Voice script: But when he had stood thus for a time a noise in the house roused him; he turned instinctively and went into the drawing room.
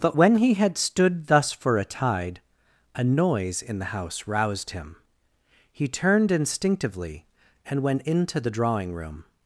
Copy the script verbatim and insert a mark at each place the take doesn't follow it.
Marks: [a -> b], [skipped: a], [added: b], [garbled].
But when he had stood thus for a [time -> tide] a noise in the house roused him; he turned instinctively and went into the drawing room.